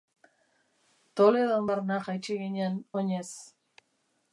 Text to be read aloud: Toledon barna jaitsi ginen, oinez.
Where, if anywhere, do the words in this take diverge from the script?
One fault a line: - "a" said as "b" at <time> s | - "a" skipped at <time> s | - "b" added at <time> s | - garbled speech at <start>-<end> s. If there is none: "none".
none